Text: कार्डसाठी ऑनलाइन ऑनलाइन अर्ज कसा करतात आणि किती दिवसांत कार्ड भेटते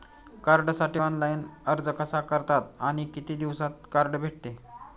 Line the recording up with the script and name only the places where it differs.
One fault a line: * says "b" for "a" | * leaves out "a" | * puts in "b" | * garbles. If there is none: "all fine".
* leaves out "ऑनलाइन"